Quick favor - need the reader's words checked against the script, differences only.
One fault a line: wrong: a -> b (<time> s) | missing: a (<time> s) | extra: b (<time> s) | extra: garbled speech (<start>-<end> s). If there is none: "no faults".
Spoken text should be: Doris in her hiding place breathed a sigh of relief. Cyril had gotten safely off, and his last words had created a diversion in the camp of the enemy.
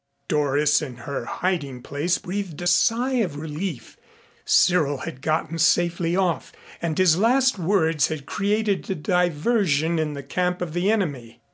no faults